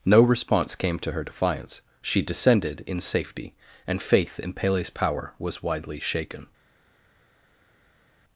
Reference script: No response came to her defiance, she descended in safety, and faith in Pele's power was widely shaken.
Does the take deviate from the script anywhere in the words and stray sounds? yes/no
no